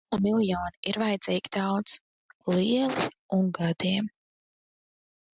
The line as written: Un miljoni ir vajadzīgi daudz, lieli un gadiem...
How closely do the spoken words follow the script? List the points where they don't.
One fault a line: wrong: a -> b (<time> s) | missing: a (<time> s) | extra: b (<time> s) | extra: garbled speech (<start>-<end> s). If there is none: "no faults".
no faults